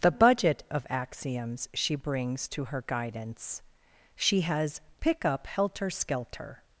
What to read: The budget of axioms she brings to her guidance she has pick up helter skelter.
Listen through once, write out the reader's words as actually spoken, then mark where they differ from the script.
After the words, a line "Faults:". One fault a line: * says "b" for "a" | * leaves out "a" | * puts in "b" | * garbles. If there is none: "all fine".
The budget of axioms she brings to her guidance she has pick up helter skelter.
Faults:
all fine